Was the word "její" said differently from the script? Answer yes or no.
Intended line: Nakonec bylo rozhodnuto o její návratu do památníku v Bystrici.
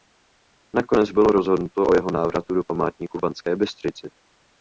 yes